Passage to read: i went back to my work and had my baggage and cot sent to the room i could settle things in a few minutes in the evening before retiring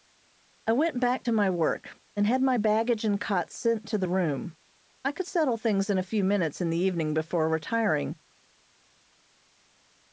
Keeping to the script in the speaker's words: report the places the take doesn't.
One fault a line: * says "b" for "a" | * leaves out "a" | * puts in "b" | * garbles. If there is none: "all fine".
all fine